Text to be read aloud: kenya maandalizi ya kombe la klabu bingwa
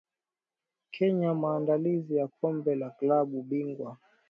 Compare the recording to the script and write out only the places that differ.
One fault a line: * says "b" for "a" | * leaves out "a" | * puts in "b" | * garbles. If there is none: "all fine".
all fine